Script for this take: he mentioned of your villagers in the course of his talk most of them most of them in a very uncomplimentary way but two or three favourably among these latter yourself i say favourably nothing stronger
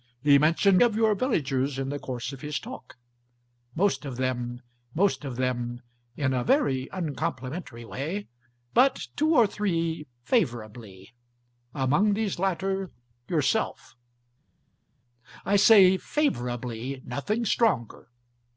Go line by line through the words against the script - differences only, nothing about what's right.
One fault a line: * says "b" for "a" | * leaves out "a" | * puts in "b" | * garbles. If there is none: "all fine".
all fine